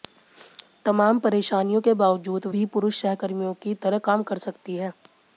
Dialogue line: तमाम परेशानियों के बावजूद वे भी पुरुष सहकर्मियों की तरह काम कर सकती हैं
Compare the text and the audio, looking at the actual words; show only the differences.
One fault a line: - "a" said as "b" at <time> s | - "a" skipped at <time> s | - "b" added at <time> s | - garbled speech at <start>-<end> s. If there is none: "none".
- "वे" skipped at 2.5 s